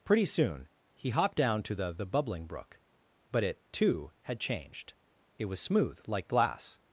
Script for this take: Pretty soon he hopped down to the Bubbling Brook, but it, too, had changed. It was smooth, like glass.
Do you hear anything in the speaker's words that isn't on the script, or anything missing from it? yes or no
yes